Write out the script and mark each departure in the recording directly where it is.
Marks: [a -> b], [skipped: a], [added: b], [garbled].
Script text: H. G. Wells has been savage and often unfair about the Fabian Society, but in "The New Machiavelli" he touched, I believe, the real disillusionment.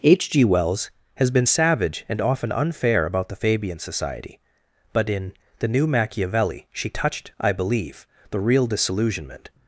H. G. Wells has been savage and often unfair about the Fabian Society, but in "The New Machiavelli" [he -> she] touched, I believe, the real disillusionment.